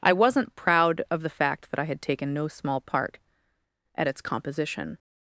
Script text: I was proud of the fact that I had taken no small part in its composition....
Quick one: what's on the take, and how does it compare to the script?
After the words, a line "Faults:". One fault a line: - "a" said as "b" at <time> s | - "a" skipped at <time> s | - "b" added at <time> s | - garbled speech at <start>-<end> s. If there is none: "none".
I wasn't proud of the fact that I had taken no small part at its composition....
Faults:
- "was" said as "wasn't" at 0.1 s
- "in" said as "at" at 4.0 s